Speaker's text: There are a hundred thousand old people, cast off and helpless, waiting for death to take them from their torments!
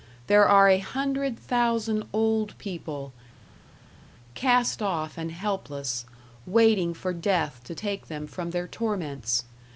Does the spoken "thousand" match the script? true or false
true